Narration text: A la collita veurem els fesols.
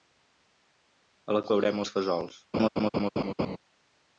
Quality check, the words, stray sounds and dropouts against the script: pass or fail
fail